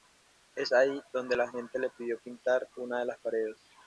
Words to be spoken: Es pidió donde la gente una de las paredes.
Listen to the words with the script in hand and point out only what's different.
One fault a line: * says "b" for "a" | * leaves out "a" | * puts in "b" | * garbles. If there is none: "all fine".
* says "ahí" for "pidió"
* puts in "le pidió pintar"